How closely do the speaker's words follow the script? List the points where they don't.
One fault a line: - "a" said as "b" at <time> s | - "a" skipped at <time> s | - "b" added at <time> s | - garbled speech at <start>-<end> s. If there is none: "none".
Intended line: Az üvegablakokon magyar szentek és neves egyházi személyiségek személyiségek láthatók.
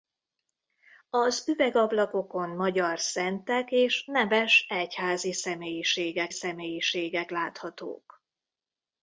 none